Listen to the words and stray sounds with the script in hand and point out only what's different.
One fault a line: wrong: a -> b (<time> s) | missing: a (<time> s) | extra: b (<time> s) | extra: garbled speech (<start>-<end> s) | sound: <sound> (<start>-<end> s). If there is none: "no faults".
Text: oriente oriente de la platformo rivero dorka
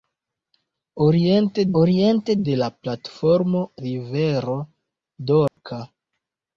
sound: dropout (5.5-5.6 s)